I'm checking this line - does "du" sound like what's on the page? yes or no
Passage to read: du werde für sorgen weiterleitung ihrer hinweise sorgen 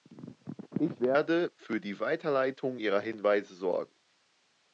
no